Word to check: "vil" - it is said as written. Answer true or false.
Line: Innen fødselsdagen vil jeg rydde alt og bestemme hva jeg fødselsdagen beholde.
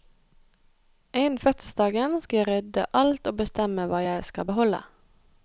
false